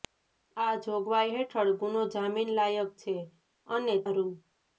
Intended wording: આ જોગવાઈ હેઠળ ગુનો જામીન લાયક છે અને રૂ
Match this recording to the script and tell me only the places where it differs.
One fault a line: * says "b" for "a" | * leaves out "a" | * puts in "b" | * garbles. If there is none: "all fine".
all fine